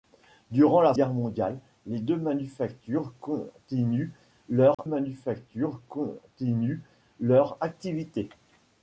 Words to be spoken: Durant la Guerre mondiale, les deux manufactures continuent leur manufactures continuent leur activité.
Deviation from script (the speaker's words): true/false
false